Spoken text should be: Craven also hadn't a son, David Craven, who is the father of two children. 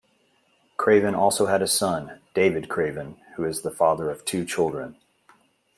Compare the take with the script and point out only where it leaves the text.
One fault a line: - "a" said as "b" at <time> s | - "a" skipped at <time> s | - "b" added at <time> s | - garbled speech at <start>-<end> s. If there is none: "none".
- "hadn't" said as "had" at 1.4 s